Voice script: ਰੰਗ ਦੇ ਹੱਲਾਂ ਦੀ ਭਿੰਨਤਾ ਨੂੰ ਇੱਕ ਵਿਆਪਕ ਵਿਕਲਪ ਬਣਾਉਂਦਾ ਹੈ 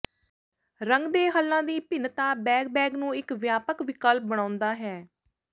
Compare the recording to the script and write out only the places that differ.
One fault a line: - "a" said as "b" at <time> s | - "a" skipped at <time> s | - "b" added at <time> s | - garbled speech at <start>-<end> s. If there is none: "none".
- "ਬੈਗ ਬੈਗ" added at 2.4 s